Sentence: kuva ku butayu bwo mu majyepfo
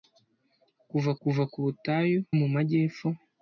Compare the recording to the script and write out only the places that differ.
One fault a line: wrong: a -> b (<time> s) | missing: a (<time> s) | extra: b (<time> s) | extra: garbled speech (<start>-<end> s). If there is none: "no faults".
extra: kuva (1.2 s)
missing: bwo (2.2 s)